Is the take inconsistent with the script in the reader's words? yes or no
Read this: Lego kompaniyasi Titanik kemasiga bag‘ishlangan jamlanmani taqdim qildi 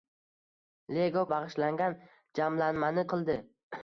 yes